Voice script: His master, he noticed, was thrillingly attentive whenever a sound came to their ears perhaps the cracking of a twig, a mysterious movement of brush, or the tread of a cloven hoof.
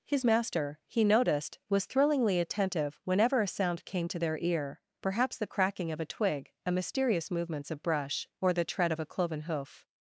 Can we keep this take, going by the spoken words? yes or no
no